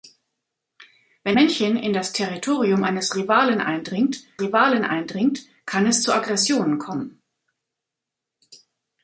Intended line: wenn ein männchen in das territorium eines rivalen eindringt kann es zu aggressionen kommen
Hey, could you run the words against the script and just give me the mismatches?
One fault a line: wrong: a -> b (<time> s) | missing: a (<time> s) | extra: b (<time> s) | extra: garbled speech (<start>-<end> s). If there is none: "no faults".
missing: ein (1.4 s)
extra: rivalen eindringt (4.4 s)